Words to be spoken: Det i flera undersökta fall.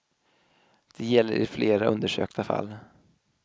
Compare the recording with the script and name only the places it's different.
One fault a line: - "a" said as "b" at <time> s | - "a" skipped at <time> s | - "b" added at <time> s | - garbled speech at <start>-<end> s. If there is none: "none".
- "gäller" added at 1.1 s